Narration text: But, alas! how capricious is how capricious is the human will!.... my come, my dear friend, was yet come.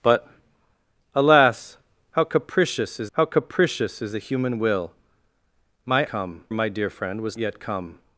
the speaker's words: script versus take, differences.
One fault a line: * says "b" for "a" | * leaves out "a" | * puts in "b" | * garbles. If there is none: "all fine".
all fine